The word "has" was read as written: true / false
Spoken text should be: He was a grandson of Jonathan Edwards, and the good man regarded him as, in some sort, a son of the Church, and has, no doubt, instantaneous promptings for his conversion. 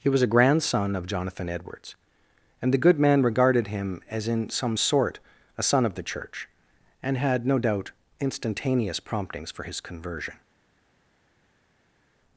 false